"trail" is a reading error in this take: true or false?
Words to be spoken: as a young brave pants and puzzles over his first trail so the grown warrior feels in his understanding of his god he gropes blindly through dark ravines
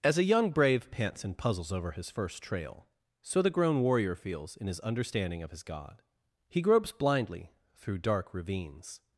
false